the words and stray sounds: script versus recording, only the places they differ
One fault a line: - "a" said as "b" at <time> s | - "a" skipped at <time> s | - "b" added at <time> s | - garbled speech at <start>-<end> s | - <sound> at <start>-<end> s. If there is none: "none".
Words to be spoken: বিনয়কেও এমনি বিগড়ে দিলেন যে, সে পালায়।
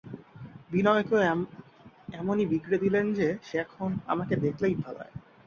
- "এখন আমাকে দেখলেই" added at 3.6 s